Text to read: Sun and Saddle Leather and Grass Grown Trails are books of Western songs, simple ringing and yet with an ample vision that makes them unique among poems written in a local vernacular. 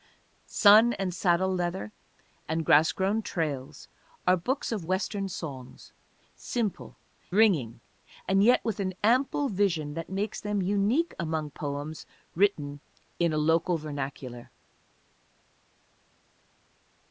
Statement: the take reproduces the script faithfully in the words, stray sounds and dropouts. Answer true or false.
true